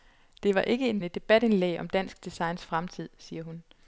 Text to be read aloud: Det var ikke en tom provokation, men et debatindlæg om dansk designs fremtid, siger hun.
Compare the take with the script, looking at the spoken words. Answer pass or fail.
fail